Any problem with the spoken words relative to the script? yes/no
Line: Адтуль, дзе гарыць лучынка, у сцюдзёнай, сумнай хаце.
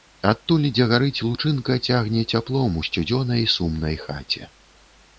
yes